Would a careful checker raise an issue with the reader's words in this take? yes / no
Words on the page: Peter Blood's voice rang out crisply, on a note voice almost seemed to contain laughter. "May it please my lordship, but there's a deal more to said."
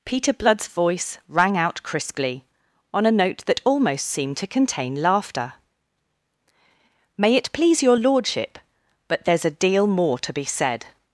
yes